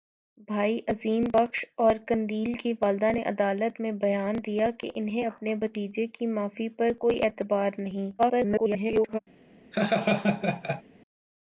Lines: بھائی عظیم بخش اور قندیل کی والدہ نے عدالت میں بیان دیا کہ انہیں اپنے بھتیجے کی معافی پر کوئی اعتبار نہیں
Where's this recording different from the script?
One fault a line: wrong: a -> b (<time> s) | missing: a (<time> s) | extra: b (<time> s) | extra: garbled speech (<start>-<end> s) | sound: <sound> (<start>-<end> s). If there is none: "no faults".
extra: garbled speech (8.2-9.2 s)
sound: laugh (9.7-10.8 s)